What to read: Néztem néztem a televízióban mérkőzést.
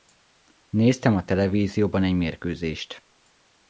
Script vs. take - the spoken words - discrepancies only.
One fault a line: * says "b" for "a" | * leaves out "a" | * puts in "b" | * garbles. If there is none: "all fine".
* leaves out "néztem"
* puts in "egy"